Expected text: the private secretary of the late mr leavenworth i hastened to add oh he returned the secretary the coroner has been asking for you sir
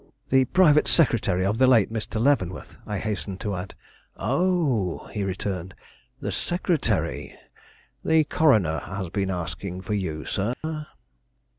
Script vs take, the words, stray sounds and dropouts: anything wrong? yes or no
yes